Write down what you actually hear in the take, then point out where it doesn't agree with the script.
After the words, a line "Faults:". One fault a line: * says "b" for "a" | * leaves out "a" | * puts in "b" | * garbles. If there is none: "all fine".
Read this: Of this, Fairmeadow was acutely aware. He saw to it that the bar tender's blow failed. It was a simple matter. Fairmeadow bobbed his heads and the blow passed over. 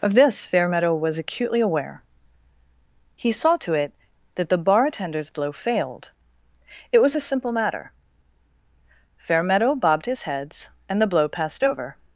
Of this, Fairmeadow was acutely aware. He saw to it that the bar tender's blow failed. It was a simple matter. Fairmeadow bobbed his heads and the blow passed over.
Faults:
all fine